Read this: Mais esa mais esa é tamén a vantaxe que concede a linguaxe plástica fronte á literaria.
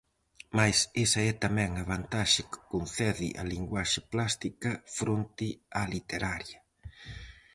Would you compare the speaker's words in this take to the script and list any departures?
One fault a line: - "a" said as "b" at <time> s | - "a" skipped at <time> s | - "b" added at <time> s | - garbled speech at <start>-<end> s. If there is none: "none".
- "mais esa" skipped at 1.2 s